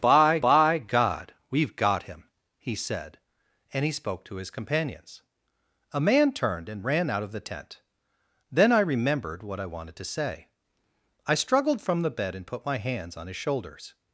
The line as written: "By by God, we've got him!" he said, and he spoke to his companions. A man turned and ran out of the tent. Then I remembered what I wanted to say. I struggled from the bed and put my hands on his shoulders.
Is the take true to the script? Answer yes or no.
yes